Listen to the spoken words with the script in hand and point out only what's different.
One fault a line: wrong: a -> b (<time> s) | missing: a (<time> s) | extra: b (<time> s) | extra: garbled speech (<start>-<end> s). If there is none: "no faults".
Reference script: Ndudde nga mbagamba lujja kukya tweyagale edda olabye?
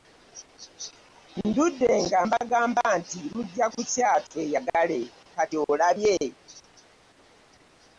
extra: nti (3.0 s)
wrong: edda -> kati (5.3 s)